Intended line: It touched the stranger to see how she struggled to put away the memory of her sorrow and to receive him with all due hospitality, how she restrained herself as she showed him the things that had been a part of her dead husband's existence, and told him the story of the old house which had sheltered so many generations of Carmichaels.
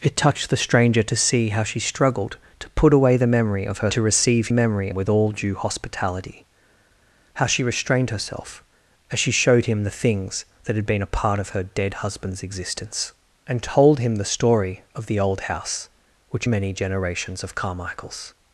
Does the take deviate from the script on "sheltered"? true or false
true